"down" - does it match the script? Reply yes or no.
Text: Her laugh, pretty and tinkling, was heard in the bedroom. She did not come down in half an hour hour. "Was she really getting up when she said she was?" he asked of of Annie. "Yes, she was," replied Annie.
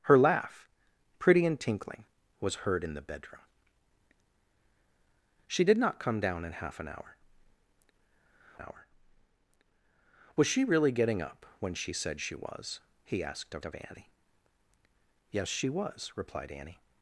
yes